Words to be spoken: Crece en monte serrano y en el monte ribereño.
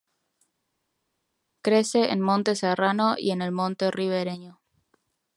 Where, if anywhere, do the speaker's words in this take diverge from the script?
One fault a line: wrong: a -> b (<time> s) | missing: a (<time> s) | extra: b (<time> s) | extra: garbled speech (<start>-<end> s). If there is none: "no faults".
no faults